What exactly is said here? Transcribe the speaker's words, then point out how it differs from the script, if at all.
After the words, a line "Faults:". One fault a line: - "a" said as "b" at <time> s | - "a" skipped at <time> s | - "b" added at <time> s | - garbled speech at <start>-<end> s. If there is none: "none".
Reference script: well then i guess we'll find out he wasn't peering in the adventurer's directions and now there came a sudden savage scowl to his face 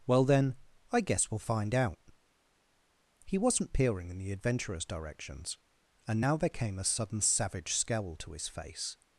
well then i guess we'll find out he wasn't peering in the adventurer's directions and now there came a sudden savage scowl to his face
Faults:
none